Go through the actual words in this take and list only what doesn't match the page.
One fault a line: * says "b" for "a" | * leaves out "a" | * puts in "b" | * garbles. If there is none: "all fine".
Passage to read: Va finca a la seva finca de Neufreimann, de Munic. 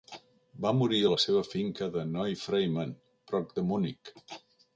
* says "morir" for "finca"
* puts in "prop"